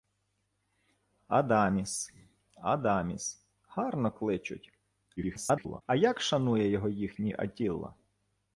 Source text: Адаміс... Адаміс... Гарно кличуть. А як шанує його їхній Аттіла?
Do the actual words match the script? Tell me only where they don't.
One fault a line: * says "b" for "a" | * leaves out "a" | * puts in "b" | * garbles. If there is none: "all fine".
* garbles